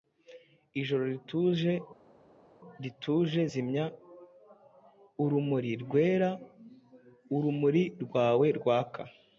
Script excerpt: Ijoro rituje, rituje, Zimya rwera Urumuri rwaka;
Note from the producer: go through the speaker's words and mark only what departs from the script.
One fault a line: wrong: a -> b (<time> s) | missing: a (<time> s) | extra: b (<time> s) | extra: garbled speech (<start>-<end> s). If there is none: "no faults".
extra: urumuri (5.2 s)
extra: rwawe (8.0 s)